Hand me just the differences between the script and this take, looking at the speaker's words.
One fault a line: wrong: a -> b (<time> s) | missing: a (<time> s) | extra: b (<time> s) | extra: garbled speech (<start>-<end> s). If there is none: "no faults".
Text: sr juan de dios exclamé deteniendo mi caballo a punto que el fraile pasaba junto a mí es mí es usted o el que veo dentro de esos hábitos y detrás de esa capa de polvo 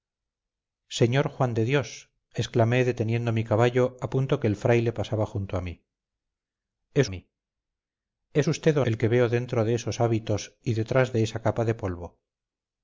no faults